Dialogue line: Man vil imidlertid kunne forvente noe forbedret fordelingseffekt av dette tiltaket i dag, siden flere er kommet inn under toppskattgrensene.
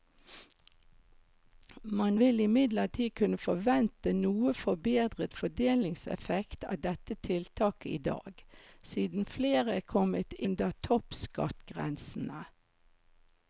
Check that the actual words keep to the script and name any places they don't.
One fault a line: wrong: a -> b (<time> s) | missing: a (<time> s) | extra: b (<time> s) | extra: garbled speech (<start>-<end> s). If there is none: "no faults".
missing: inn (10.4 s)